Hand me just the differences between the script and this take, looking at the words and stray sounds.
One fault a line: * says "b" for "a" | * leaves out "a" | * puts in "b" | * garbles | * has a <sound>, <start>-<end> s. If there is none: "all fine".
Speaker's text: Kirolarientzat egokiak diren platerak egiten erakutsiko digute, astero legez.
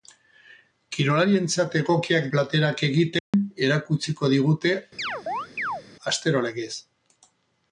* leaves out "diren"
* has a dropout, 3.2-3.3 s
* has a chirp, 5.0-5.8 s